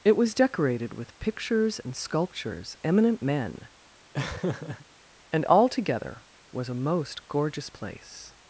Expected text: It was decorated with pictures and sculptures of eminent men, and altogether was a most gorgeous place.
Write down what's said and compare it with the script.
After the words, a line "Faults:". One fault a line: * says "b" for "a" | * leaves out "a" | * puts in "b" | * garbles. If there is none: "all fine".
It was decorated with pictures and sculptures eminent men, and altogether was a most gorgeous place.
Faults:
* leaves out "of"